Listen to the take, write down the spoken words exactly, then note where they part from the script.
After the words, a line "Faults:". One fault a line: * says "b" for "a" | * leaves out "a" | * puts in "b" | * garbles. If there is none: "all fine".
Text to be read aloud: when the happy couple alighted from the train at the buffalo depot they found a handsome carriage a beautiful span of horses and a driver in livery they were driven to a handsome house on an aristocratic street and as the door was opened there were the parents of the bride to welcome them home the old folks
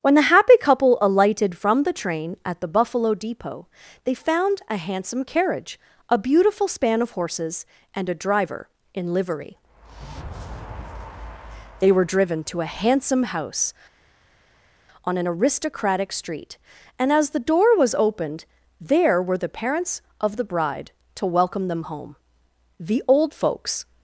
when the happy couple alighted from the train at the buffalo depot they found a handsome carriage a beautiful span of horses and a driver in livery they were driven to a handsome house on an aristocratic street and as the door was opened there were the parents of the bride to welcome them home the old folks
Faults:
all fine